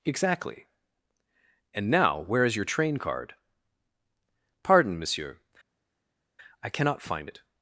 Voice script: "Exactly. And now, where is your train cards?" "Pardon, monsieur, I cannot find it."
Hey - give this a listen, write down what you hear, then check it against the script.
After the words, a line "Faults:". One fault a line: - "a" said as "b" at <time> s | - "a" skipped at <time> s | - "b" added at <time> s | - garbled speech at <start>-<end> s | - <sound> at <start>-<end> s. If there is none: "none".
"Exactly. And now, where is your train card?" "Pardon, monsieur, I cannot find it."
Faults:
- "cards" said as "card" at 3.0 s